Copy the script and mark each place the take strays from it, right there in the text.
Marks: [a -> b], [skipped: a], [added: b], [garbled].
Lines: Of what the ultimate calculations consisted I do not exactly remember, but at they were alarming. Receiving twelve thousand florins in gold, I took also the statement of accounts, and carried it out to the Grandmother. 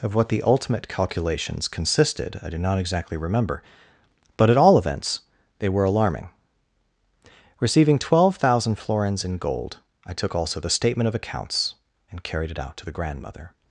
Of what the ultimate calculations consisted I do not exactly remember, but at [added: all events] they were alarming. Receiving twelve thousand florins in gold, I took also the statement of accounts, and carried it out to the Grandmother.